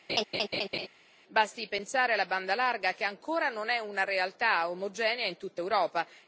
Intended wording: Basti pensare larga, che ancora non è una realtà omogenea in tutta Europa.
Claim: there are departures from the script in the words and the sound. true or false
true